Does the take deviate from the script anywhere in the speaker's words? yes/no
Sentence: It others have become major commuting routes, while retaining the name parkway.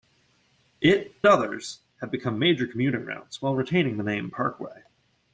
no